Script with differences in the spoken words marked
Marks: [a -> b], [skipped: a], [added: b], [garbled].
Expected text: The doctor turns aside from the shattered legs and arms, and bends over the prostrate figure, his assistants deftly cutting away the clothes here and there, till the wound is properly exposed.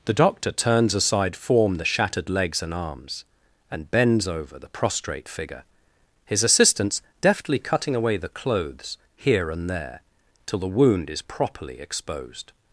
The doctor turns aside [from -> form] the shattered legs and arms, and bends over the prostrate figure, his assistants deftly cutting away the clothes here and there, till the wound is properly exposed.